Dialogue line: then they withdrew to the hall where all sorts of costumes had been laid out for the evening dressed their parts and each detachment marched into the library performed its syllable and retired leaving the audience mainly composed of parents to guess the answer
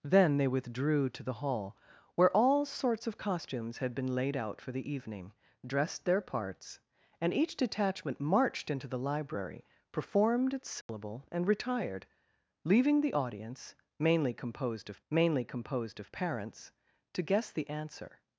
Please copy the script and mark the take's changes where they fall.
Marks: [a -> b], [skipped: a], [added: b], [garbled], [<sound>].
then they withdrew to the hall where all sorts of costumes had been laid out for the evening dressed their parts and each detachment marched into the library performed its syllable [dropout] and retired leaving the audience mainly composed of [added: mainly composed of] parents to guess the answer